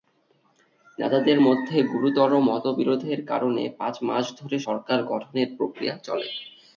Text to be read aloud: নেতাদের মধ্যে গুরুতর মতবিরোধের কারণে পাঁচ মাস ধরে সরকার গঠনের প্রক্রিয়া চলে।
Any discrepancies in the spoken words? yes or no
no